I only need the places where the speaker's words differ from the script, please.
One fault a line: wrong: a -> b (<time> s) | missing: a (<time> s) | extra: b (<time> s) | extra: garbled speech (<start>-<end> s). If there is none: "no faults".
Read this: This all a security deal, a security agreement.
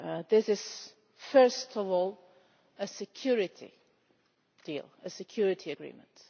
extra: is first of (0.5 s)